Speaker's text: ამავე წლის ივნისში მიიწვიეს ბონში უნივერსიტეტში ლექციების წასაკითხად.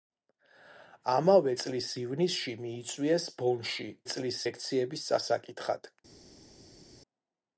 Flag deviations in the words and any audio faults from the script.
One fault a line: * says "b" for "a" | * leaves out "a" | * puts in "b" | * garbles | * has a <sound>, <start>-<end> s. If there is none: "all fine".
* says "წლის" for "უნივერსიტეტში"